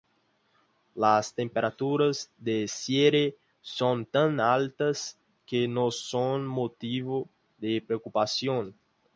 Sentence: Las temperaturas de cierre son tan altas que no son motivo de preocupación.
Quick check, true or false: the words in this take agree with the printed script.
true